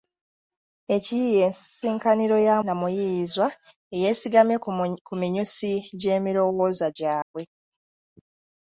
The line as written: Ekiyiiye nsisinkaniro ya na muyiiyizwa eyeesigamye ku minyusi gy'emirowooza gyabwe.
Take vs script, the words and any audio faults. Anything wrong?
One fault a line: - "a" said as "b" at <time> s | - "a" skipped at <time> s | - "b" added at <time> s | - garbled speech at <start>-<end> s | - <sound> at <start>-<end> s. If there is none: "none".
- dropout at 7.2-7.3 s